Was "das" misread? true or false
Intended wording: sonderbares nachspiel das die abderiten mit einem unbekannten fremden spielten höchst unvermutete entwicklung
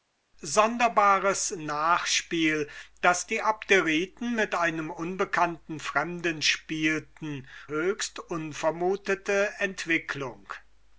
false